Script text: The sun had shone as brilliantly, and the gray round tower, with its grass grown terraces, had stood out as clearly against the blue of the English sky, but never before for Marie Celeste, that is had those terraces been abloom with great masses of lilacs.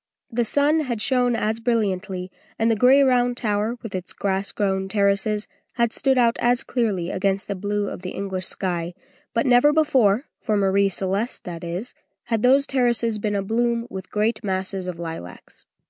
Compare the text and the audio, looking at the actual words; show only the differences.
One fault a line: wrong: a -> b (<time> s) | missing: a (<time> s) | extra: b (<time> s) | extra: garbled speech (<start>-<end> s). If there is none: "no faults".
no faults